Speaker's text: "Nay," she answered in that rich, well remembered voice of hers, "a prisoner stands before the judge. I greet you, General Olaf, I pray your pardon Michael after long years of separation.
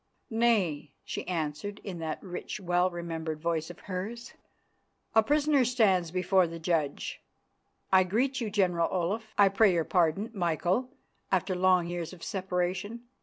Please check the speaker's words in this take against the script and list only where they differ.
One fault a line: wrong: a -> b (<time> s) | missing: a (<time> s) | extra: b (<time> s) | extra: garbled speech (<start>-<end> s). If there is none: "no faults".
no faults